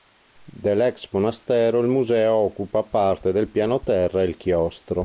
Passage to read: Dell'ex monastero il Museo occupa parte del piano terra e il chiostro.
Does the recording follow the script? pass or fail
pass